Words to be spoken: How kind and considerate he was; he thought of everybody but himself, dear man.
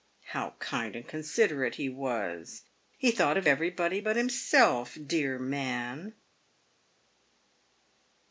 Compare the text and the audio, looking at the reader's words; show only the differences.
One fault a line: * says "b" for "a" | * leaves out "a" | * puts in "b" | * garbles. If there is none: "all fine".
all fine